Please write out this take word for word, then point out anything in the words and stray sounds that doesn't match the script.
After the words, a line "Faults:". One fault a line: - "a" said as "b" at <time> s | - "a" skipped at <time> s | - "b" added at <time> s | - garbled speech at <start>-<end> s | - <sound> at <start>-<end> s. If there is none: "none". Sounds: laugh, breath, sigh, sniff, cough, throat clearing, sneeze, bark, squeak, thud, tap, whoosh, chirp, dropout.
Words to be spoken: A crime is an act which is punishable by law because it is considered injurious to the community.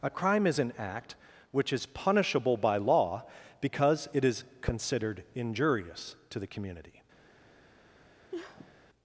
A crime is an act which is punishable by law because it is considered injurious to the community.
Faults:
- sniff at 8.3-8.8 s